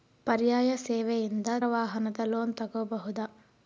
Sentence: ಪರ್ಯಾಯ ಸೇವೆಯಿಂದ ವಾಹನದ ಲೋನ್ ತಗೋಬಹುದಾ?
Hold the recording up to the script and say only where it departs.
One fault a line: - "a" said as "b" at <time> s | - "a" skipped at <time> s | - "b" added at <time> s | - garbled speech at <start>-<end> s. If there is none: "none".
none